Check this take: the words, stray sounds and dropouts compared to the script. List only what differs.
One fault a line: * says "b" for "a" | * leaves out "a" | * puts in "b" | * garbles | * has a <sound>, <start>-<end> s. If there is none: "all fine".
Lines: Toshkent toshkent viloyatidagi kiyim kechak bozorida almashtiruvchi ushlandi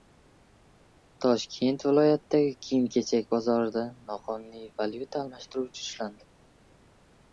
* leaves out "toshkent"
* puts in "noqonuniy valyuta"